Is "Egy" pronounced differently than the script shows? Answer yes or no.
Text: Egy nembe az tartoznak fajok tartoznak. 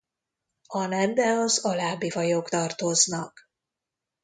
yes